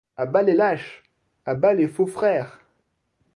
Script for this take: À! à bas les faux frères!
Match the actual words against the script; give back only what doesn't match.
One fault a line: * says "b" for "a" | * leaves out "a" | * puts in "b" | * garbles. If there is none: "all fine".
* puts in "bas les lâches"